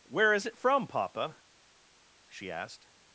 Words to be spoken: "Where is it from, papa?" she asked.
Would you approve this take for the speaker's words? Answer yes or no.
yes